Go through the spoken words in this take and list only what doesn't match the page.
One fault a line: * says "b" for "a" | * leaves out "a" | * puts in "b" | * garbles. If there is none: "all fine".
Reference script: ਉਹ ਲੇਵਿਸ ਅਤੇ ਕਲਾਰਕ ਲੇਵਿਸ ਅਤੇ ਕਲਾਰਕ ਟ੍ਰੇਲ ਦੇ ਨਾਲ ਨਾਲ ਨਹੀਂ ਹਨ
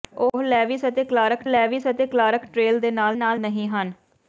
all fine